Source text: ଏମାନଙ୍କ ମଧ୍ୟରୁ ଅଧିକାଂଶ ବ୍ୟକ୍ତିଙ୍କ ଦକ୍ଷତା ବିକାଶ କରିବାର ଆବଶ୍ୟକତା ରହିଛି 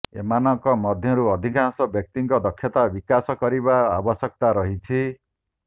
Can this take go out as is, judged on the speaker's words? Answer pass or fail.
pass